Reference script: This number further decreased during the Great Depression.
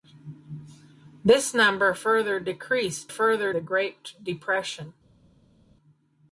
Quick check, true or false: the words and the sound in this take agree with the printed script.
false